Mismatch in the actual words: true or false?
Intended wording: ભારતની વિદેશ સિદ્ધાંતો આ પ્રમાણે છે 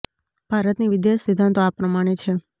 false